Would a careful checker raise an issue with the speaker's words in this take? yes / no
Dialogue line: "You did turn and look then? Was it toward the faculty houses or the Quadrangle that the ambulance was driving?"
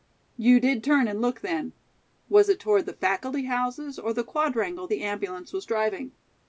yes